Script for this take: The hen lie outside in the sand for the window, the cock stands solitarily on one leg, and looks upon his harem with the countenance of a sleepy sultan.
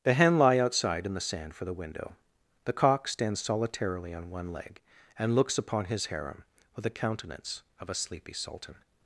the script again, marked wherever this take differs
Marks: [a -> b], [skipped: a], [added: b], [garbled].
The hen lie outside in the sand for the window, the cock stands solitarily on one leg, and looks upon his harem with the countenance of a sleepy sultan.